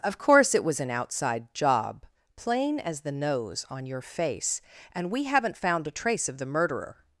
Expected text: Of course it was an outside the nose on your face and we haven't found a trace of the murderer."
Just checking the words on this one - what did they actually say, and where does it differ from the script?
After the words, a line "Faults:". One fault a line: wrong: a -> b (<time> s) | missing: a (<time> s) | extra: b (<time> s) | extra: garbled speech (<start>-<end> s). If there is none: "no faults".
Of course it was an outside job plain as the nose on your face and we haven't found a trace of the murderer."
Faults:
extra: job plain as (1.5 s)